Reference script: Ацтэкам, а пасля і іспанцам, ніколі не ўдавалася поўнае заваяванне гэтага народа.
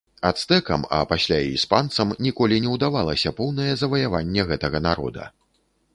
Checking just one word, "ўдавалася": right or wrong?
right